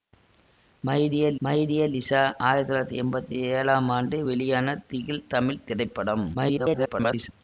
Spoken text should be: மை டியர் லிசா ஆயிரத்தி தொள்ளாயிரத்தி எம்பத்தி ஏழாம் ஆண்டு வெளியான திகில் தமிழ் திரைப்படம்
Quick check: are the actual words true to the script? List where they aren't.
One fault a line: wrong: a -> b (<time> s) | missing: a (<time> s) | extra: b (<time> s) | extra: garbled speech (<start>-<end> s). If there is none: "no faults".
extra: மை டியர் (1.4 s)
extra: garbled speech (6.3-7.3 s)